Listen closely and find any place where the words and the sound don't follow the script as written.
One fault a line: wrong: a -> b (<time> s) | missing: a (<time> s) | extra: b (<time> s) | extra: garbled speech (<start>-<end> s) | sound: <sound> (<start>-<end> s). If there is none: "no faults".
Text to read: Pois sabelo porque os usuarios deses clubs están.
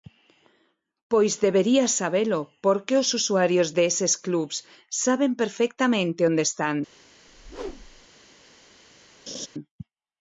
extra: debería (1.4 s)
extra: saben perfectamente onde (5.0 s)
sound: whoosh (7.3-8.1 s)
sound: laugh (9.3-9.5 s)